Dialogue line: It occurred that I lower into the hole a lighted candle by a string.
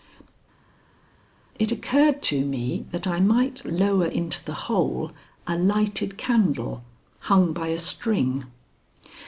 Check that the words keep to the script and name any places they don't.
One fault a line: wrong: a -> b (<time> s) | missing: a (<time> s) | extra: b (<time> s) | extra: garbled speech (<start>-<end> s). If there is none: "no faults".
extra: to me (2.3 s)
extra: might (3.2 s)
extra: hung (7.2 s)